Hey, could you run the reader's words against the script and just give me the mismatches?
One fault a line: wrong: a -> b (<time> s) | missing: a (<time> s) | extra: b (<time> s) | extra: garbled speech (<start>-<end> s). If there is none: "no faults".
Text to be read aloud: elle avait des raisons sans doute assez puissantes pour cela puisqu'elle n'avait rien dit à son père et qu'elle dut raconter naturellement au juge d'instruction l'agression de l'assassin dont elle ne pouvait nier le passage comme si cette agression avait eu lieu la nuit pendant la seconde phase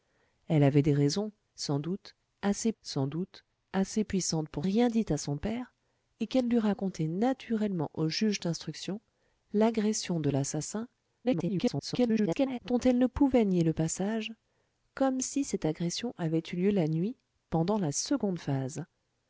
wrong: puissantes pour cela puisqu'elle n'avait -> sans doute assez puissantes pour (2.8 s)
extra: garbled speech (11.2-12.6 s)